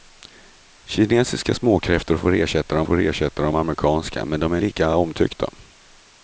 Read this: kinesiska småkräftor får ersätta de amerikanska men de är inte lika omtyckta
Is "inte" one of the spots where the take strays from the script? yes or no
yes